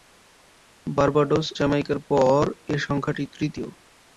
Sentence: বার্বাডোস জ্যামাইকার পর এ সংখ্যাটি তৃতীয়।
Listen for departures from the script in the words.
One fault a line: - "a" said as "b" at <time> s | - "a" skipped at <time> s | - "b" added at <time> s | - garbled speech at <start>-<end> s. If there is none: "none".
none